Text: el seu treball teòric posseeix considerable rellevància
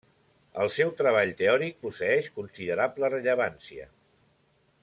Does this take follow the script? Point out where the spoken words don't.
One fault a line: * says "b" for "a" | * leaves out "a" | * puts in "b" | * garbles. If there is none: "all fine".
all fine